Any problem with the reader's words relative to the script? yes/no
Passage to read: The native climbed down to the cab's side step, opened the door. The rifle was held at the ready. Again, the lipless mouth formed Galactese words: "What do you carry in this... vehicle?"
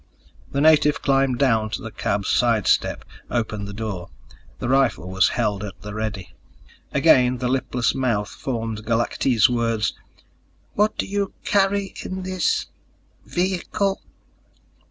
no